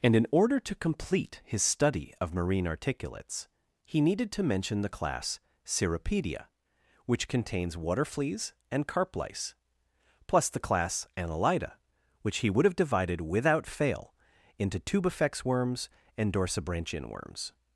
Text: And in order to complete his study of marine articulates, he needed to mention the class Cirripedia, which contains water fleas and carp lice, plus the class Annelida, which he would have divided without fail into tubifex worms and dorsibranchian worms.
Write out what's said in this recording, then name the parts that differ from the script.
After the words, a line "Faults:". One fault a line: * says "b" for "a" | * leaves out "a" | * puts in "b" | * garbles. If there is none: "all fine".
And in order to complete his study of marine articulates, he needed to mention the class Cirripedia, which contains water fleas and carp lice, plus the class Annelida, which he would have divided without fail into tubifex worms and dorsibranchian worms.
Faults:
all fine